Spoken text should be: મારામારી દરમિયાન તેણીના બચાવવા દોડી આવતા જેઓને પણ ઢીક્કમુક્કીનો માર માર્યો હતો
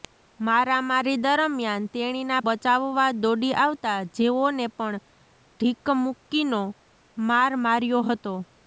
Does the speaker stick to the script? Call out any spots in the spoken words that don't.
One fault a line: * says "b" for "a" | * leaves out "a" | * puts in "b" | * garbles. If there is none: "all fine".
all fine